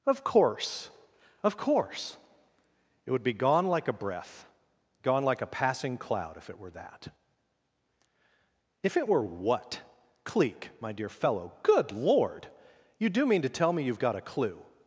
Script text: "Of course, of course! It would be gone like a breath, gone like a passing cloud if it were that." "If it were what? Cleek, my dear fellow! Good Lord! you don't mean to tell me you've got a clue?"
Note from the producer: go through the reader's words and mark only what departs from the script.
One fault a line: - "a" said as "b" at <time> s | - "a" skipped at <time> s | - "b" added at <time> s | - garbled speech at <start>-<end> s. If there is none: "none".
- "don't" said as "do" at 13.1 s